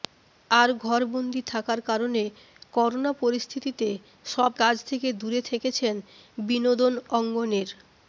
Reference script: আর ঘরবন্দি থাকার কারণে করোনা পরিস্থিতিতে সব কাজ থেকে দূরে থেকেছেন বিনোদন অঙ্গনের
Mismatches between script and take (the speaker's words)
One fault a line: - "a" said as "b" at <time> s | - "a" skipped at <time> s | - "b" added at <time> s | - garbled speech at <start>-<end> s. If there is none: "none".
none